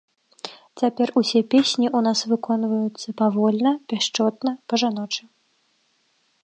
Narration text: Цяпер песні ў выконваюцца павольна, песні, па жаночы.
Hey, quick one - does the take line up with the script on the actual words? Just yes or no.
no